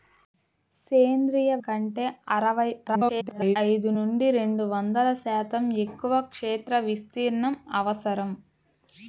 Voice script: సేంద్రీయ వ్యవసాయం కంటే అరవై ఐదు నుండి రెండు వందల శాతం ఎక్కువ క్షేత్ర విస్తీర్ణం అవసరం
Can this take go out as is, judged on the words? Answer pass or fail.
fail